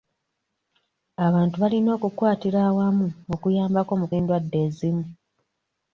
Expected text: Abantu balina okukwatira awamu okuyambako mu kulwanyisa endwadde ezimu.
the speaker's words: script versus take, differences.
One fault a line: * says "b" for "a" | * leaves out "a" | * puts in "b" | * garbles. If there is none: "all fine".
* leaves out "kulwanyisa"